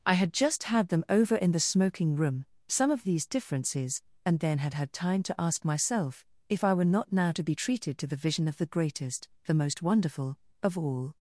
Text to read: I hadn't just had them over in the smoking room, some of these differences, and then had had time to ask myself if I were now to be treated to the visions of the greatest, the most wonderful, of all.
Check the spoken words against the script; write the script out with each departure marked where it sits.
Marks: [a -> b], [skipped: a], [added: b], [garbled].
I [hadn't -> had] just had them over in the smoking room, some of these differences, and then had had time to ask myself if I were [added: not] now to be treated to the [visions -> vision] of the greatest, the most wonderful, of all.